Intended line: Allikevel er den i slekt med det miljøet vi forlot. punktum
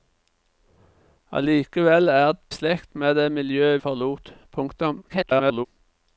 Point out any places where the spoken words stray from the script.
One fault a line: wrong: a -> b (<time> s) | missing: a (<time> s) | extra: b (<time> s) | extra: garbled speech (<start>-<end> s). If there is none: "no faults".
missing: den i (2.3 s)
missing: vi (3.8 s)
extra: garbled speech (5.1-5.7 s)